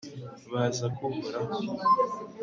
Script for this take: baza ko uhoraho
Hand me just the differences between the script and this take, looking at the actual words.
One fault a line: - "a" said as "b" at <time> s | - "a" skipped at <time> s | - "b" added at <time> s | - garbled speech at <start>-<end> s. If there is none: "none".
none